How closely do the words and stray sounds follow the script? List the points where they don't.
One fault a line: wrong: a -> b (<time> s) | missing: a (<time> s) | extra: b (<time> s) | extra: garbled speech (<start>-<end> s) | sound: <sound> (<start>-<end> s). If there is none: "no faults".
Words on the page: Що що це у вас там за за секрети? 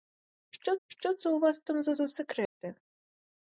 sound: dropout (2.5-2.6 s)